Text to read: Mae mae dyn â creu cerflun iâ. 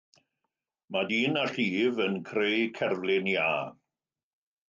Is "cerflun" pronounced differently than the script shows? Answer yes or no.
no